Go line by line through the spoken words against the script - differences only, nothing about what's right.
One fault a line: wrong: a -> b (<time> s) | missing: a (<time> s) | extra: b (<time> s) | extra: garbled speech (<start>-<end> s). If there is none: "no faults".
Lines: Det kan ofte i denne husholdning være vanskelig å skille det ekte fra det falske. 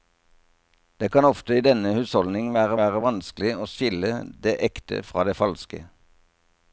extra: være (2.8 s)